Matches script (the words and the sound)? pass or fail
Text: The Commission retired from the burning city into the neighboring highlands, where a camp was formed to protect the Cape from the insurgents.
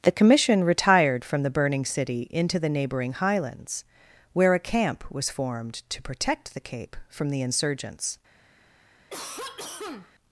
fail